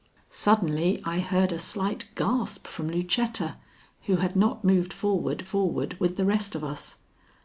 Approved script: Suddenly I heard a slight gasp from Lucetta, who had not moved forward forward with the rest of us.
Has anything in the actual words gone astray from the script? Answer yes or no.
no